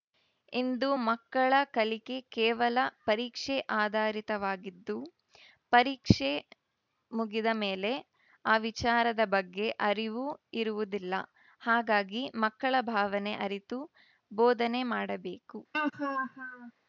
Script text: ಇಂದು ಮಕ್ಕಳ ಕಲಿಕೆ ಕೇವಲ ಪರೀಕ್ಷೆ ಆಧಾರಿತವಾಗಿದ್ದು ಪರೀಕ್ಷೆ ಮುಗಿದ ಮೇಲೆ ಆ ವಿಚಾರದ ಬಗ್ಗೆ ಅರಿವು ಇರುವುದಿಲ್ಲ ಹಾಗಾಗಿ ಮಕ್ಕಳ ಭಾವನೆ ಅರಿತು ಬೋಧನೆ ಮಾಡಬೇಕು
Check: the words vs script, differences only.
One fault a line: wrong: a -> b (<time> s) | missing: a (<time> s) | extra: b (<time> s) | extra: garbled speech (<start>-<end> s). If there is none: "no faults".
no faults